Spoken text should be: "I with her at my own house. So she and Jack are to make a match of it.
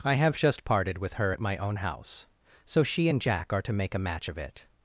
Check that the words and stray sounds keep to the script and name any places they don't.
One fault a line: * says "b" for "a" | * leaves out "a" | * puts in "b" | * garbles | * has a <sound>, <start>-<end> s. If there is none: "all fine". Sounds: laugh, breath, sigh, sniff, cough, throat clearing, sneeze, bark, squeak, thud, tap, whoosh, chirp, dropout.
* puts in "have just parted"